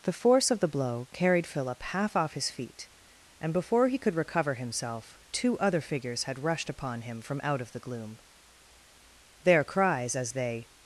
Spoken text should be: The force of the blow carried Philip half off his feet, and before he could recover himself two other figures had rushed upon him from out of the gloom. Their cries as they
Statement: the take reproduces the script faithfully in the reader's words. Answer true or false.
true